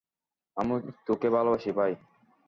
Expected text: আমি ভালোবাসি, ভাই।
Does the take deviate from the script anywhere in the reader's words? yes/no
yes